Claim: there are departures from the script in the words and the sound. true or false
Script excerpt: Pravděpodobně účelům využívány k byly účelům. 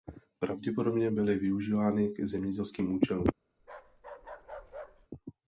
true